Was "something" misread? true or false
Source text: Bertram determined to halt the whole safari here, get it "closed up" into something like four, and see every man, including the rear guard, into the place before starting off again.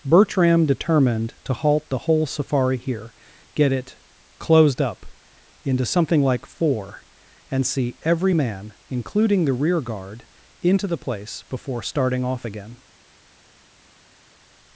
false